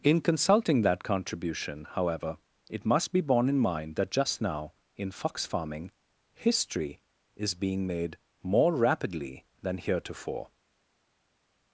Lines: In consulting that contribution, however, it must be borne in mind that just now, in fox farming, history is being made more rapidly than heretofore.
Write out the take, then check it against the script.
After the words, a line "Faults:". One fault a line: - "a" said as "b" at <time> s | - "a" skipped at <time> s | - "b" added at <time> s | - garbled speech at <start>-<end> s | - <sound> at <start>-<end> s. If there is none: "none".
In consulting that contribution, however, it must be borne in mind that just now, in fox farming, history is being made more rapidly than heretofore.
Faults:
none